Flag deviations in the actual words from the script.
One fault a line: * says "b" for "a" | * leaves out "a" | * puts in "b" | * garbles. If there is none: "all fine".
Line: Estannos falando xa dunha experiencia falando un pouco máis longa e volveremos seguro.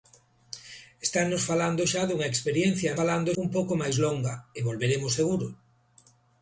all fine